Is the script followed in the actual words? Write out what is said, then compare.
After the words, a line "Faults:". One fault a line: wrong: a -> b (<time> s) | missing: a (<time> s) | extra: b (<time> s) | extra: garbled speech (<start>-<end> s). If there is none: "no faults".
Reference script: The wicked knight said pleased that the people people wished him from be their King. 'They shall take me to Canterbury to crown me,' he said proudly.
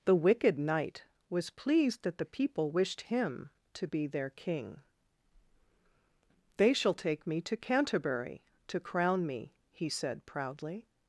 The wicked knight was pleased that the people wished him to be their King. 'They shall take me to Canterbury to crown me,' he said proudly.
Faults:
wrong: said -> was (1.3 s)
missing: people (2.7 s)
wrong: from -> to (3.8 s)